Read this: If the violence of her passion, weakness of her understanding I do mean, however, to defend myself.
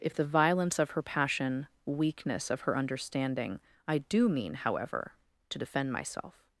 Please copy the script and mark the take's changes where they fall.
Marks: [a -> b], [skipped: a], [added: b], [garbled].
If the violence of her passion, weakness of her understanding I do mean, however, to defend myself.